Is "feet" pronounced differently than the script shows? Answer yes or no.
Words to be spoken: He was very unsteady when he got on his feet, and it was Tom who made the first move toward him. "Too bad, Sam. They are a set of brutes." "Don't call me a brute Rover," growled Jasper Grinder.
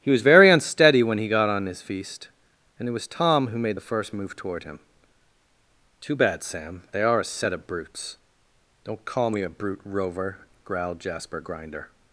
yes